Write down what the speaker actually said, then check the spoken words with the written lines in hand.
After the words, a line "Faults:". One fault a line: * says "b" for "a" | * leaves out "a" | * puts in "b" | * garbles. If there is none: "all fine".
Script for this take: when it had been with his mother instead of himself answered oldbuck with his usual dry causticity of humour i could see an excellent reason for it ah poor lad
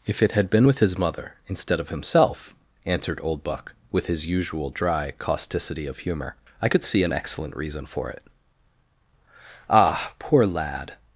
if it had been with his mother instead of himself answered oldbuck with his usual dry causticity of humour i could see an excellent reason for it ah poor lad
Faults:
* says "if" for "when"